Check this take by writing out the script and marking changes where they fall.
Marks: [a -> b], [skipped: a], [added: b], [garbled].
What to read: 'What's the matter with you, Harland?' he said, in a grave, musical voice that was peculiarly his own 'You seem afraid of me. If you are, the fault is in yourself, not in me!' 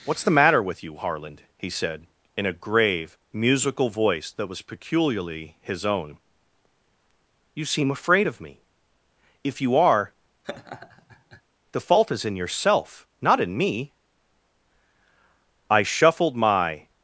'What's the matter with you, Harland?' he said, in a grave, musical voice that was peculiarly his own 'You seem afraid of me. If you are, the fault is in yourself, not in me!' [added: I shuffled my]